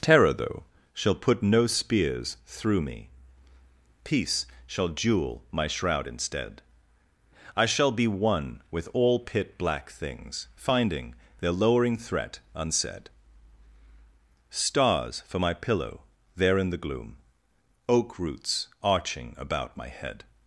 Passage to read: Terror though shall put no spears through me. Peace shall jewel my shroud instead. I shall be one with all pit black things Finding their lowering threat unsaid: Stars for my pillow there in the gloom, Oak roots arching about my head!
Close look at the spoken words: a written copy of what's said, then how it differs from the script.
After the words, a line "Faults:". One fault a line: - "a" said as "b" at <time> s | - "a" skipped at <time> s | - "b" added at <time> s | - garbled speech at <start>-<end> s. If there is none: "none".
Terror though shall put no spears through me. Peace shall jewel my shroud instead. I shall be one with all pit black things Finding their lowering threat unsaid: Stars for my pillow there in the gloom, Oak roots arching about my head!
Faults:
none